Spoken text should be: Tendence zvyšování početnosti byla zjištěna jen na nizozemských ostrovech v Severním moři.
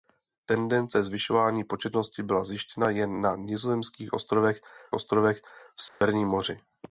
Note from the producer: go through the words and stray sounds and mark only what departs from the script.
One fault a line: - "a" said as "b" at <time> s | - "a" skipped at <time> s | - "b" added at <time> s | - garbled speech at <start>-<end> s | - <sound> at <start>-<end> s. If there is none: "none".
- "ostrovech" added at 4.9 s
- dropout at 5.9-6.0 s